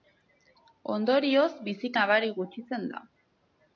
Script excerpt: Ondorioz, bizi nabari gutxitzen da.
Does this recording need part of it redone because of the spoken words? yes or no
no